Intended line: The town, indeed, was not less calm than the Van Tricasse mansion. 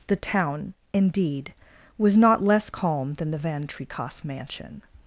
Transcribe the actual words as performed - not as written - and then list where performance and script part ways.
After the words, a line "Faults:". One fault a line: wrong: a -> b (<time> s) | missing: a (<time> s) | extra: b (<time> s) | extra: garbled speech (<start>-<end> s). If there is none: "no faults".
The town, indeed, was not less calm than the Van Tricasse mansion.
Faults:
no faults